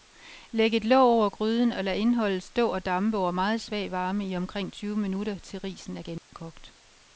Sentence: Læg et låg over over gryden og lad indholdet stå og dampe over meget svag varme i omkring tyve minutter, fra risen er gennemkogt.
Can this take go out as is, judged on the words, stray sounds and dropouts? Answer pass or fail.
fail